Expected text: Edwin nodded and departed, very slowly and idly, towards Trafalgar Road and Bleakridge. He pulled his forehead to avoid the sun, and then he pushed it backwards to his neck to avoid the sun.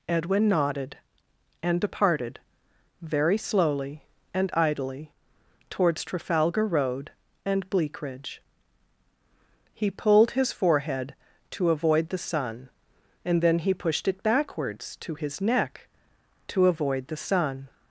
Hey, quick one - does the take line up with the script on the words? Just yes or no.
yes